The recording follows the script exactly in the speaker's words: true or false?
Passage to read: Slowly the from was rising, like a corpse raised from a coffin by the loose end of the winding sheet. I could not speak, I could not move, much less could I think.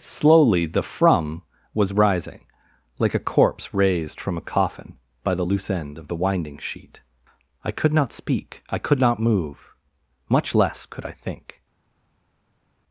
true